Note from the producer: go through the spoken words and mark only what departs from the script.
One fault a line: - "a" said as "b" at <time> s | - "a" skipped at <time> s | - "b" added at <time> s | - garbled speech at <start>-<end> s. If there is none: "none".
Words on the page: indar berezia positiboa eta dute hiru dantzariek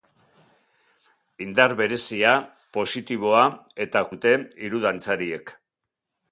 none